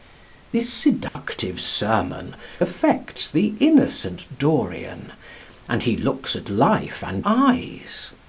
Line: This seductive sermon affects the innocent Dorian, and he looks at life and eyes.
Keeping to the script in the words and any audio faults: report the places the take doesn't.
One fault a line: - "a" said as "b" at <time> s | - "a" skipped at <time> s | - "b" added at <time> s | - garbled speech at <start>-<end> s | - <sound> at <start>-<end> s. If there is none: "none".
- dropout at 1.1-1.2 s